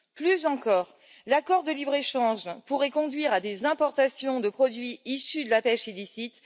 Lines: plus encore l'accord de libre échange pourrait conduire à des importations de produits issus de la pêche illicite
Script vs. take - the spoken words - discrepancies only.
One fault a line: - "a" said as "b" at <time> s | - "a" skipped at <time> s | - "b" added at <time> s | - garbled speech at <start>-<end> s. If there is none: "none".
none